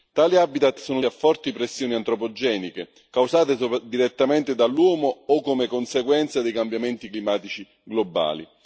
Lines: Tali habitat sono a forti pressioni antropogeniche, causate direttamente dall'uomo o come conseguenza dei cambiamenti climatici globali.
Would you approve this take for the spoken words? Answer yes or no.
yes